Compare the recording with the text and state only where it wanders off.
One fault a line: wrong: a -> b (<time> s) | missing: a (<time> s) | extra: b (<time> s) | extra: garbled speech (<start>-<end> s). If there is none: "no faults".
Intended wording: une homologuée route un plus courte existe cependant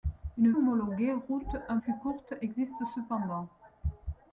no faults